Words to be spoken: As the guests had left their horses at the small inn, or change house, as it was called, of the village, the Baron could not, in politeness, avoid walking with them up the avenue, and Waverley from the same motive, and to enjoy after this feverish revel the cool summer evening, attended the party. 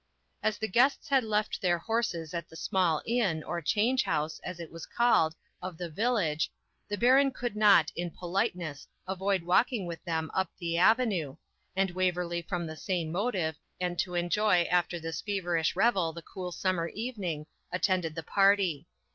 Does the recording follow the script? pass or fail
pass